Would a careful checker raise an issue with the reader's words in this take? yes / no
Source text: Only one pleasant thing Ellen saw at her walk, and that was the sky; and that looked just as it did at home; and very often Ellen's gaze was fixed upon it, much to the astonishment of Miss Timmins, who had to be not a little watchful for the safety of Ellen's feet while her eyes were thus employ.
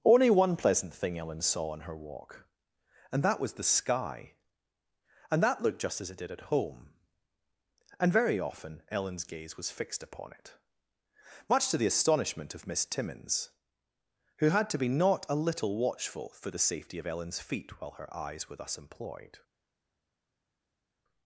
yes